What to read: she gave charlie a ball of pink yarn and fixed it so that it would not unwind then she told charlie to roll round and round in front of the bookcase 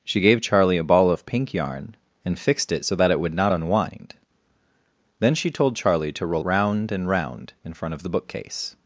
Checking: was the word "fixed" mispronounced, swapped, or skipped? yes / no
no